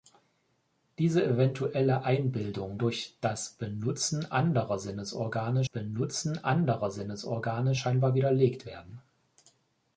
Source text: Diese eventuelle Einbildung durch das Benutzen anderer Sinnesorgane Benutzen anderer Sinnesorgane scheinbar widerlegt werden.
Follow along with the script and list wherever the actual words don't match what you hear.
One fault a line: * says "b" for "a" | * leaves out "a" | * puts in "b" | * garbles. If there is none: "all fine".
all fine